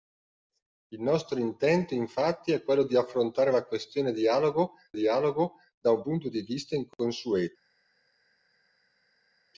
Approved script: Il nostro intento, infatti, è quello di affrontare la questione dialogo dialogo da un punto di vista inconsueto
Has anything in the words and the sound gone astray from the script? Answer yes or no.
no